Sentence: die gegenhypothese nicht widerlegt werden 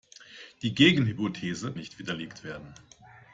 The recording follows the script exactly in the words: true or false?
true